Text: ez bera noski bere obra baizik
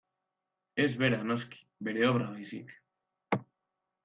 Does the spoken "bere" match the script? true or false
true